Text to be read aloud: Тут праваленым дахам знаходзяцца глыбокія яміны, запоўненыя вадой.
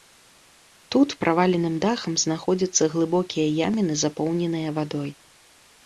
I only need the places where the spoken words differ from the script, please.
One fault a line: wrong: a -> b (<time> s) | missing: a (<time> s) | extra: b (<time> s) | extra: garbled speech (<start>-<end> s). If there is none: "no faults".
no faults